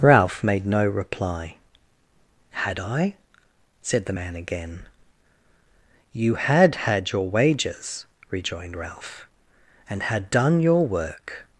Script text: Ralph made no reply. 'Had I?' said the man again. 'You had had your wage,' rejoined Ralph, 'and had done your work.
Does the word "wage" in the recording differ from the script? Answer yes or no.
yes